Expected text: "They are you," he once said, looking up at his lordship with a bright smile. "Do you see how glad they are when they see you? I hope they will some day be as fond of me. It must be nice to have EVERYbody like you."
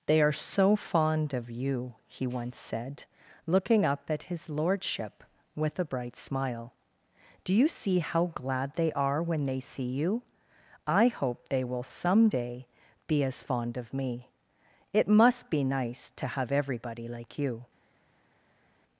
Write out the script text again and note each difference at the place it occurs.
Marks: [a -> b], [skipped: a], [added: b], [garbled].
"They are [added: so fond of] you," he once said, looking up at his lordship with a bright smile. "Do you see how glad they are when they see you? I hope they will some day be as fond of me. It must be nice to have EVERYbody like you."